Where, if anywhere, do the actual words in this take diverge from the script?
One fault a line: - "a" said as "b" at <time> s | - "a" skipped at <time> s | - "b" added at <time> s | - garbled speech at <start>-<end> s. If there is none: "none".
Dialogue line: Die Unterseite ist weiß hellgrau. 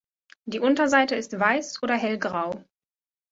- "oder" added at 1.8 s